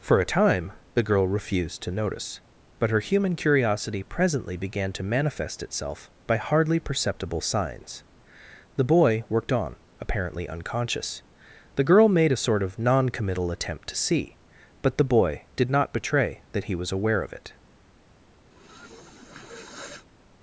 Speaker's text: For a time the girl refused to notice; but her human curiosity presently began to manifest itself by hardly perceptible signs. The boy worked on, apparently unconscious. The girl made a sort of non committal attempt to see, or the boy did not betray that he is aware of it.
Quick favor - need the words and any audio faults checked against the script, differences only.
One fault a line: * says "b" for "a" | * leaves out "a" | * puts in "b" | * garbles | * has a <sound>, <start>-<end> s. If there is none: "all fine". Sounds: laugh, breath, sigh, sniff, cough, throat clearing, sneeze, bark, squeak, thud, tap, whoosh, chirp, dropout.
* says "but" for "or"
* says "was" for "is"
* has a sniff, 18.5-20.1 s